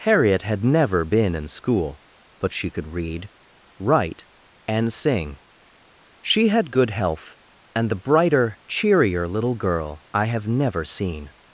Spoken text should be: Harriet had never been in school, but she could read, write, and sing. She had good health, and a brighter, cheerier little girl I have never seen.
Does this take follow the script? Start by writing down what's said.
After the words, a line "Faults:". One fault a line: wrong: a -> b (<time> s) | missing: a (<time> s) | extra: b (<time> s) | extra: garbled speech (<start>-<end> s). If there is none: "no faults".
Harriet had never been in school, but she could read, write, and sing. She had good health, and the brighter, cheerier little girl I have never seen.
Faults:
wrong: a -> the (7.9 s)